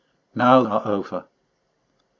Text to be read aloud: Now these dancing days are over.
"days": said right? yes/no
no